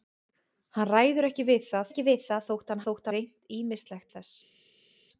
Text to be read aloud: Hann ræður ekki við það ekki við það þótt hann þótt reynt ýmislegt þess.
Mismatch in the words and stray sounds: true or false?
false